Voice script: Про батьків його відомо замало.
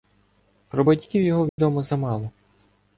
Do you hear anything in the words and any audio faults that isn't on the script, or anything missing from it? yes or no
yes